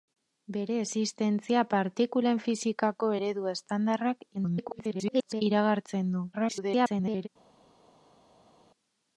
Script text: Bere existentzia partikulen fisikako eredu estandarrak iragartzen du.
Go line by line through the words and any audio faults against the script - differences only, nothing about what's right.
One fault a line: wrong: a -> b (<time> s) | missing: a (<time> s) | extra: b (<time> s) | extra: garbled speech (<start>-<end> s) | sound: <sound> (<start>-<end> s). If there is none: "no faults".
extra: garbled speech (4.3-5.4 s)
extra: garbled speech (6.3-7.3 s)